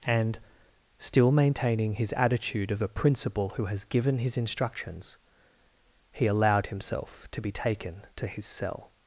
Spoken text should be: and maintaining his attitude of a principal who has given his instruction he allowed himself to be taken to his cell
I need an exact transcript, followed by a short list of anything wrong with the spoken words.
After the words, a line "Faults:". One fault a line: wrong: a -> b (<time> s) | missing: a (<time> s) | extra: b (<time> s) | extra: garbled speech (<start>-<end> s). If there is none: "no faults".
and still maintaining his attitude of a principal who has given his instructions he allowed himself to be taken to his cell
Faults:
extra: still (1.0 s)
wrong: instruction -> instructions (4.4 s)